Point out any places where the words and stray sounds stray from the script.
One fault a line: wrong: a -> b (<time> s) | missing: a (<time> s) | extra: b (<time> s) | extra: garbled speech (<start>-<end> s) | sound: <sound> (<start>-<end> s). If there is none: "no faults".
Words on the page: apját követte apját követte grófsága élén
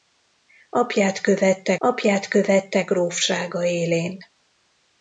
no faults